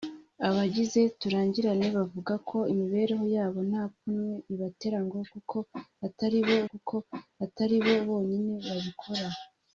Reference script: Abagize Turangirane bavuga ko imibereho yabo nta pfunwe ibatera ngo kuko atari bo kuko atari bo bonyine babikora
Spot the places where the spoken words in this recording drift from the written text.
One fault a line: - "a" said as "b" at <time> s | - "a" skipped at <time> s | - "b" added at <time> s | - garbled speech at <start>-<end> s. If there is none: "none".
none